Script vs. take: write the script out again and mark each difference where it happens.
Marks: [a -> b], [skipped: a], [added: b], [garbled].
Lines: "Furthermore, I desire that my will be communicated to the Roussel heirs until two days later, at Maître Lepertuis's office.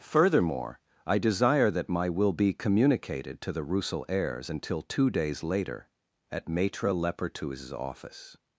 "Furthermore, I desire that my will be communicated to the Roussel heirs until two days later, at Maître Lepertuis's office.